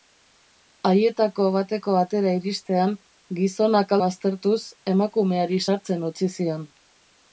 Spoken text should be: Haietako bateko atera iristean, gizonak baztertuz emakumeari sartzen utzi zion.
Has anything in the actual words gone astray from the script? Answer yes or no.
no